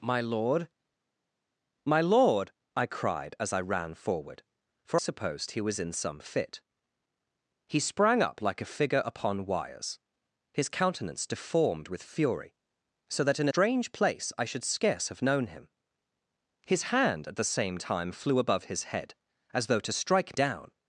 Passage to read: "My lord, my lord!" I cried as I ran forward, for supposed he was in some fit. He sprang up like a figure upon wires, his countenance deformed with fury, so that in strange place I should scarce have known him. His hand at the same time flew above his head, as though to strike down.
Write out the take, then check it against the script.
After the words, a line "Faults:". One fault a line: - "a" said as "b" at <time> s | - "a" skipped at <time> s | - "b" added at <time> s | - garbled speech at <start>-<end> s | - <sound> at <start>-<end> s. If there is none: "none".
"My lord, my lord!" I cried as I ran forward, for supposed he was in some fit. He sprang up like a figure upon wires, his countenance deformed with fury, so that in strange place I should scarce have known him. His hand at the same time flew above his head, as though to strike down.
Faults:
none